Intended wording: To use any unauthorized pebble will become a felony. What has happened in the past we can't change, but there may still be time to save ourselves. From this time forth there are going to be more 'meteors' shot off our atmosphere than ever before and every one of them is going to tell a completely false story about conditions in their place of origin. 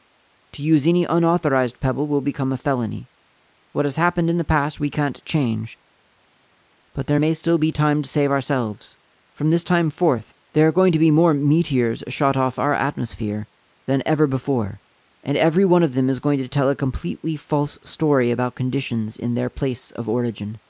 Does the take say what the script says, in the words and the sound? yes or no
yes